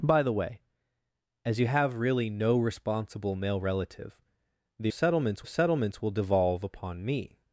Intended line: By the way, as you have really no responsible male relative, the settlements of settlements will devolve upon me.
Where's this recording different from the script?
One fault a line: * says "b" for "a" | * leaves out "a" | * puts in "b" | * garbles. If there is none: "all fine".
all fine